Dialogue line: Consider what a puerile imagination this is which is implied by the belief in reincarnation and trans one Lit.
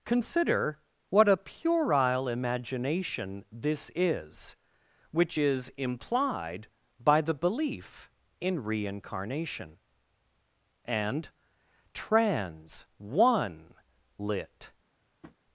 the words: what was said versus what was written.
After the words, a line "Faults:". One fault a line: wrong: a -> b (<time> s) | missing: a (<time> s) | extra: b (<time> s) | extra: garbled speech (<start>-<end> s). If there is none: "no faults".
Consider what a puerile imagination this is which is implied by the belief in reincarnation and trans one Lit.
Faults:
no faults